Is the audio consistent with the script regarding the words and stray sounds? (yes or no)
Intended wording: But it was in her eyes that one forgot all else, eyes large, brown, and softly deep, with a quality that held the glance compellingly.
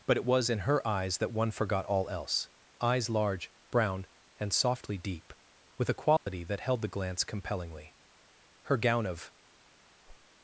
no